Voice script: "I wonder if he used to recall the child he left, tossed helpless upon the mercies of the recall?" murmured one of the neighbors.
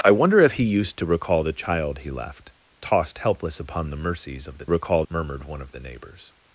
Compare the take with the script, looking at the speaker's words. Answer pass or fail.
pass